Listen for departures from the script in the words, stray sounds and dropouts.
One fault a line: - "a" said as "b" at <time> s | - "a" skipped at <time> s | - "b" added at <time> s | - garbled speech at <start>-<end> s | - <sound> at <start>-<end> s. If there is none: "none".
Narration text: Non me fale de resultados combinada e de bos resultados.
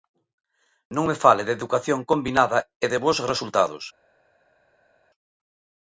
- "resultados" said as "educación" at 1.6 s